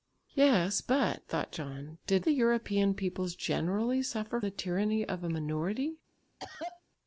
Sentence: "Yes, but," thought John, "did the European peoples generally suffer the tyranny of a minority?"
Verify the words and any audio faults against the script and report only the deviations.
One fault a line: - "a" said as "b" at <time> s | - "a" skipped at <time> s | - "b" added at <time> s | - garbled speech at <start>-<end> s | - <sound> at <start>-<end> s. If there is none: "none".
- cough at 6.4-6.8 s